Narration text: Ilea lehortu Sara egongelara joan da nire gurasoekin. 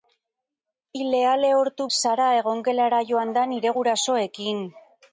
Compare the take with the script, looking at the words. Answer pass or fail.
pass